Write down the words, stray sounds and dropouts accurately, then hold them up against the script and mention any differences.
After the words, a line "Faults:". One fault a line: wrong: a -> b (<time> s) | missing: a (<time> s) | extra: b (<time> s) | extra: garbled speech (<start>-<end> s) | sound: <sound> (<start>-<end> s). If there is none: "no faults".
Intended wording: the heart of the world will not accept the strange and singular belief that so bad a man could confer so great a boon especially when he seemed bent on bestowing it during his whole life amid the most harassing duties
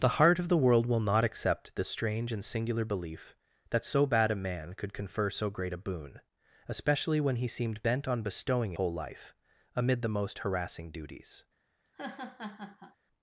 the heart of the world will not accept the strange and singular belief that so bad a man could confer so great a boon especially when he seemed bent on bestowing whole life amid the most harassing duties
Faults:
missing: it during his (8.7 s)
sound: laugh (11.8-13.0 s)